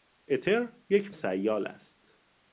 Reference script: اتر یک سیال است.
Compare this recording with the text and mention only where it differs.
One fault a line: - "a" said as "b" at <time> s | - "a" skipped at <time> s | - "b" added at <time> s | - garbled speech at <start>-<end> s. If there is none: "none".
none